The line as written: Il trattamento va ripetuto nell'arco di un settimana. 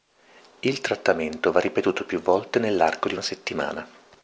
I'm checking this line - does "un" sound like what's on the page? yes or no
no